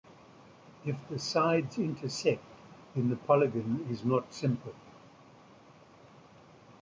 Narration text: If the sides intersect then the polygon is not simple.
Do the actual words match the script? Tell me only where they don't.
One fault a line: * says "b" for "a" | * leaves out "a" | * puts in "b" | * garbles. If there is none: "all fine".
all fine